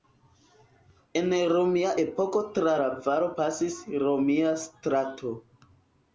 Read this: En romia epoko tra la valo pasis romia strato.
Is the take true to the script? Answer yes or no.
yes